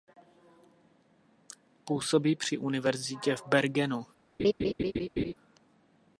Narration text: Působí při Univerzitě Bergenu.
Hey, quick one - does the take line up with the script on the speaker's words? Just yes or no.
no